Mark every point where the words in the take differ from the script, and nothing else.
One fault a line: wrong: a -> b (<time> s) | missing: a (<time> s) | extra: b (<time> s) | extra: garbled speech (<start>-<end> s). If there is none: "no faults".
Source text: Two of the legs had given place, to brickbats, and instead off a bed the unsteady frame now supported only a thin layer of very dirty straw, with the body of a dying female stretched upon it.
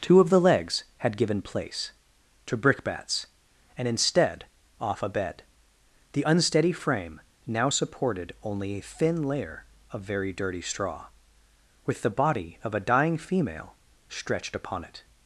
no faults